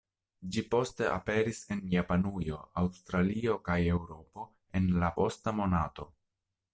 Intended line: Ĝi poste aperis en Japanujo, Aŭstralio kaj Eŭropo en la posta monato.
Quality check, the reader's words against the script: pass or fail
pass